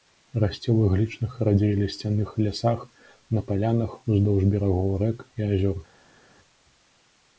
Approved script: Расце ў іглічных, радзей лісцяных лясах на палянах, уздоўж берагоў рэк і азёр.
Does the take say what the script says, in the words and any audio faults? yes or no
yes